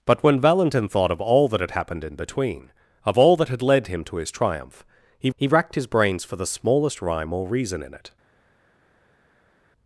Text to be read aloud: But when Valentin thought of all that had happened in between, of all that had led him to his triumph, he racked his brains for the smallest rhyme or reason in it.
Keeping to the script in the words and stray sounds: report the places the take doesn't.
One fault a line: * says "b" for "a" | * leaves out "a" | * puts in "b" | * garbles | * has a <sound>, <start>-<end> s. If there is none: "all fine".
* puts in "he"